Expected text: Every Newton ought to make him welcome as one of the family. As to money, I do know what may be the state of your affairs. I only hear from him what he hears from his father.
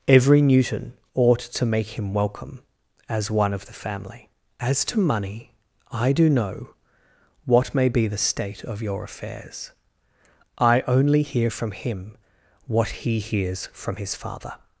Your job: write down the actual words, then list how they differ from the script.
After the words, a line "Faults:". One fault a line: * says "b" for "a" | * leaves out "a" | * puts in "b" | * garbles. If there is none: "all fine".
Every Newton ought to make him welcome as one of the family. As to money, I do know what may be the state of your affairs. I only hear from him what he hears from his father.
Faults:
all fine